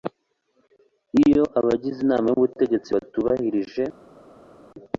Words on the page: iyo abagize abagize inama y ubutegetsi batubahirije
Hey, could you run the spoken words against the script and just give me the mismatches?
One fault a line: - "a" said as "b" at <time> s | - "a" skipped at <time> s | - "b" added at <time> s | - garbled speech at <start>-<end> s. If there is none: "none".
- "abagize" skipped at 2.0 s